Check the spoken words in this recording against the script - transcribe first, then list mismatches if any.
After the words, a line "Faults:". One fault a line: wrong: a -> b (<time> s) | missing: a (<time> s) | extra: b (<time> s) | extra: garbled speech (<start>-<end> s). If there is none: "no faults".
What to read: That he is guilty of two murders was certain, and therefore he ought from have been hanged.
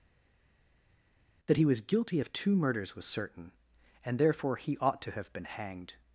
That he was guilty of two murders was certain, and therefore he ought to have been hanged.
Faults:
wrong: is -> was (1.7 s)
wrong: from -> to (5.0 s)